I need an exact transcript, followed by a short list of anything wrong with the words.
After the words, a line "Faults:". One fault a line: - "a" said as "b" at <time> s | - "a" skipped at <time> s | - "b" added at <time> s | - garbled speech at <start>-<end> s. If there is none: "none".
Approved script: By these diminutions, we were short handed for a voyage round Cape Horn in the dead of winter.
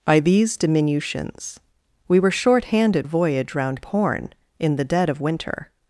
By these diminutions, we were short handed a voyage round Horn in the dead of winter.
Faults:
- "for" skipped at 3.1 s
- "Cape" skipped at 3.8 s